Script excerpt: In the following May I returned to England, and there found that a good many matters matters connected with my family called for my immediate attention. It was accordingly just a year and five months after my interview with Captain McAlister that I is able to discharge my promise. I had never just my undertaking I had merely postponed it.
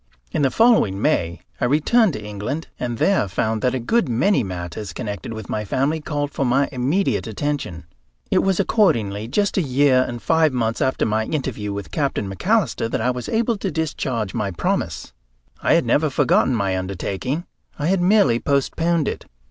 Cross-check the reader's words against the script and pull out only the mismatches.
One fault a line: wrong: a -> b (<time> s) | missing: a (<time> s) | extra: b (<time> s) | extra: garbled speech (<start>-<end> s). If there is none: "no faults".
missing: matters (4.9 s)
wrong: is -> was (13.1 s)
wrong: just -> forgotten (16.1 s)